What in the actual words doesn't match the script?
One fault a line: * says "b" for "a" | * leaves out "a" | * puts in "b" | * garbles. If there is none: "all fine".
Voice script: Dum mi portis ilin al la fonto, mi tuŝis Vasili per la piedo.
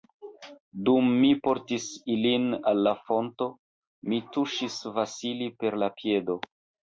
all fine